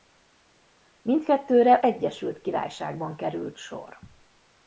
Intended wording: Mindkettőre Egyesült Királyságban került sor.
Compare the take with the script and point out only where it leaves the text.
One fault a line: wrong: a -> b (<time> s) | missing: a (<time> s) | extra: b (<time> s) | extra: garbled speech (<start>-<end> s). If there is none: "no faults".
no faults